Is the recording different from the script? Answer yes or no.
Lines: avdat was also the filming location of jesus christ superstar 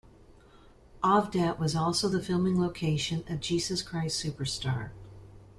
no